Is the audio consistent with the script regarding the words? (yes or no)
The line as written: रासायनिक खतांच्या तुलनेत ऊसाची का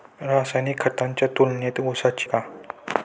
yes